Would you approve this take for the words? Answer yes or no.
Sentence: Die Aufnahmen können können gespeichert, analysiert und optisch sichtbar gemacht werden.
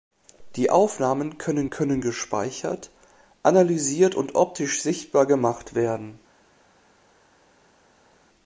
yes